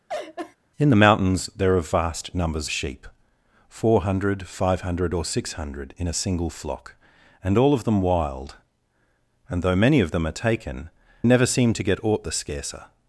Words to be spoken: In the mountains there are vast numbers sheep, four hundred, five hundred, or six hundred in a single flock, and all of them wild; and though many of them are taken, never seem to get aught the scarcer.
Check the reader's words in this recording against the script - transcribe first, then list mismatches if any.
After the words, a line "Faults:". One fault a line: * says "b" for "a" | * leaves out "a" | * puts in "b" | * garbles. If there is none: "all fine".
In the mountains there are vast numbers sheep, four hundred, five hundred, or six hundred in a single flock, and all of them wild; and though many of them are taken, never seem to get aught the scarcer.
Faults:
all fine